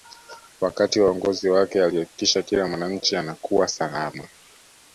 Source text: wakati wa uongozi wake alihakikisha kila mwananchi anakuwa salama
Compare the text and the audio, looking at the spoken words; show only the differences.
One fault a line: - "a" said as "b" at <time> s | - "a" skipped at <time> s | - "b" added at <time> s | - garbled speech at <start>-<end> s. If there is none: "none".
none